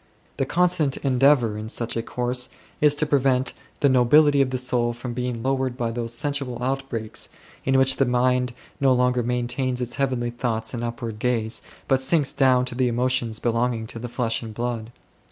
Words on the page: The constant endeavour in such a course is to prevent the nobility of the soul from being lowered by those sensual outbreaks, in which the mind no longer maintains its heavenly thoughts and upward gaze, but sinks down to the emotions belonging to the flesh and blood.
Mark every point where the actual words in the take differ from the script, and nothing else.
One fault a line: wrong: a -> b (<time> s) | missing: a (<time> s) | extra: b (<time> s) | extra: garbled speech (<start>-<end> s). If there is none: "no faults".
no faults